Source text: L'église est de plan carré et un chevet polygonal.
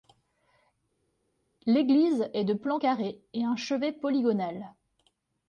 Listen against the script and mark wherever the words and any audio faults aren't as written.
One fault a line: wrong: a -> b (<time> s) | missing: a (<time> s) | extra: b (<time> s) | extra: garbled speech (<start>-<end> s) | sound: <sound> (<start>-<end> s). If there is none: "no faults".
no faults